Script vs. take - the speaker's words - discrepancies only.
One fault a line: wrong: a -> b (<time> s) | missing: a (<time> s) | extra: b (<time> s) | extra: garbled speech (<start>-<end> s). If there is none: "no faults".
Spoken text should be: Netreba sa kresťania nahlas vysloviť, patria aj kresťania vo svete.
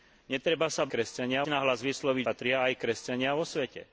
no faults